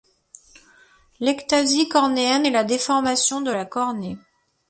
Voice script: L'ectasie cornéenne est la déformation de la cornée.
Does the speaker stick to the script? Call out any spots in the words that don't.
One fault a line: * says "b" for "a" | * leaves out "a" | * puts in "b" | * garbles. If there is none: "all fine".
all fine